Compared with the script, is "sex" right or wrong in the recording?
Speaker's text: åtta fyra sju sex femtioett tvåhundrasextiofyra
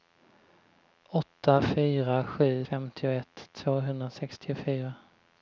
wrong